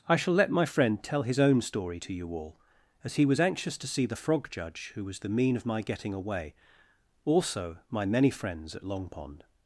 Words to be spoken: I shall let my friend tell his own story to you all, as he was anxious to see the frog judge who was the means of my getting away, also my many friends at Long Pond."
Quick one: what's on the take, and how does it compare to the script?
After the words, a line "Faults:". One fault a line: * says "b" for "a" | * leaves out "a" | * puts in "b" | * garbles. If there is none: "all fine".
I shall let my friend tell his own story to you all, as he was anxious to see the frog judge who was the mean of my getting away, also my many friends at Long Pond."
Faults:
* says "mean" for "means"